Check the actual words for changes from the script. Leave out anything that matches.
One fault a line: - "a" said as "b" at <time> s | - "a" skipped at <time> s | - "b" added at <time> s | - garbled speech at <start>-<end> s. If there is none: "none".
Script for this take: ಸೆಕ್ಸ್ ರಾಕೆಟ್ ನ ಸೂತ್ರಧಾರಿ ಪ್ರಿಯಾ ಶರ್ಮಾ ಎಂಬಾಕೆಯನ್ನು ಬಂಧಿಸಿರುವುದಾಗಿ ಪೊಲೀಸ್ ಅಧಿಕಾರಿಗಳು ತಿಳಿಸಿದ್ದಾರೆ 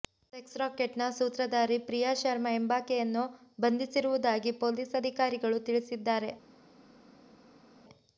none